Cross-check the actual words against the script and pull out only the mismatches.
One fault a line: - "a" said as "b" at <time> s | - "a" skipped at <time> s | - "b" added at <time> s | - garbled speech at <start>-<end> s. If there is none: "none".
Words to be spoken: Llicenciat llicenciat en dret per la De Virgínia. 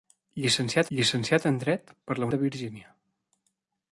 none